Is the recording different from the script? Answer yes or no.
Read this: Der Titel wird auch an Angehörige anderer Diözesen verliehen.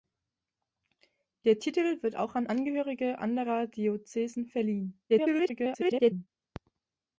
yes